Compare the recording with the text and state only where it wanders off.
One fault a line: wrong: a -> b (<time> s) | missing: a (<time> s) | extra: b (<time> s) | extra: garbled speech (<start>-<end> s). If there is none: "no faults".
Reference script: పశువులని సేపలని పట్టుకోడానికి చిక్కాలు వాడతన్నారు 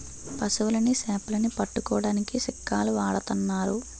no faults